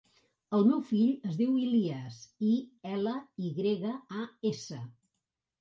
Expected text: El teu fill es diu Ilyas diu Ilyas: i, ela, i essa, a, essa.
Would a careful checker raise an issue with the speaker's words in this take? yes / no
yes